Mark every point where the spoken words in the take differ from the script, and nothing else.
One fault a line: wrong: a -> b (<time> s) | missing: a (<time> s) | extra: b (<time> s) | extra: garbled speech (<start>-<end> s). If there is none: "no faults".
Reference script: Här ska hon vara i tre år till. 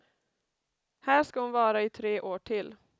no faults